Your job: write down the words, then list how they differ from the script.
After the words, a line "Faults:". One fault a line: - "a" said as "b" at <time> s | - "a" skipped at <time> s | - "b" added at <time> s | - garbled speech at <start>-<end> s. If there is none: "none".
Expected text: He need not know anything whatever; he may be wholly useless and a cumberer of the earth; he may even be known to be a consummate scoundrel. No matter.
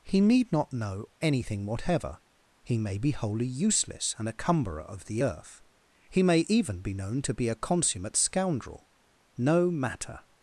He need not know anything whatever; he may be wholly useless and a cumberer of the earth; he may even be known to be a consummate scoundrel. No matter.
Faults:
none